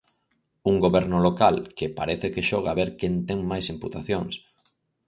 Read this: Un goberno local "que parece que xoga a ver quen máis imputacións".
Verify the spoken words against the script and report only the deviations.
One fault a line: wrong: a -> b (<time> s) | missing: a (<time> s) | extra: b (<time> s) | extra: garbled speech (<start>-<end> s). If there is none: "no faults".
extra: ten (3.3 s)